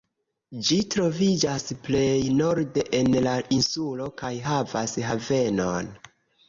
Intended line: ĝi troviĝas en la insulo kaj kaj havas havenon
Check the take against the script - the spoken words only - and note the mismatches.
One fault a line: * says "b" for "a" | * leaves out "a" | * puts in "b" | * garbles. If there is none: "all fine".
* puts in "plej norde"
* leaves out "kaj"